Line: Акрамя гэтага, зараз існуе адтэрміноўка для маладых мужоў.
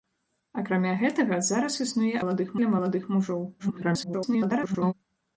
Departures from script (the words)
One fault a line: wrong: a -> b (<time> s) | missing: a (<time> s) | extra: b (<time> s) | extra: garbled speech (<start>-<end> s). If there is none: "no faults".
wrong: адтэрміноўка -> маладых (2.2 s)
extra: garbled speech (3.6-4.9 s)